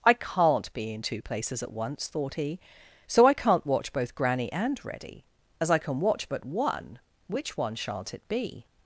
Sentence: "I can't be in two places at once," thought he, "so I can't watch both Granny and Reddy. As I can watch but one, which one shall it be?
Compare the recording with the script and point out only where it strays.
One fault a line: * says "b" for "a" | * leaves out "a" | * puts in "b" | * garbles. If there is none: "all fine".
* says "shan't" for "shall"